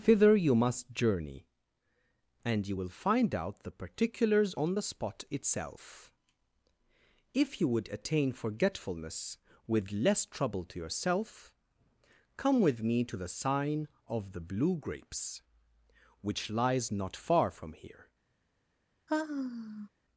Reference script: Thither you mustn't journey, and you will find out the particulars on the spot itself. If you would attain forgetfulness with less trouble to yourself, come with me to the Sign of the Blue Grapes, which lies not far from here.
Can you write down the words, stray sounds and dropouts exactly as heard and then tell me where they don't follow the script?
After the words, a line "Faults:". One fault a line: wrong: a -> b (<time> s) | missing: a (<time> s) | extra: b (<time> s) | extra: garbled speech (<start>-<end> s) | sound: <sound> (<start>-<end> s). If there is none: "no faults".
Thither you must journey, and you will find out the particulars on the spot itself. If you would attain forgetfulness with less trouble to yourself, come with me to the Sign of the Blue Grapes, which lies not far from here.
Faults:
wrong: mustn't -> must (0.6 s)
sound: sigh (19.1-19.9 s)